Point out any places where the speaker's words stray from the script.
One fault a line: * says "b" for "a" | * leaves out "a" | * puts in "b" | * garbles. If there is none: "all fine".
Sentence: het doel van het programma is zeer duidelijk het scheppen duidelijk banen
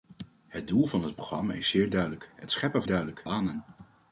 all fine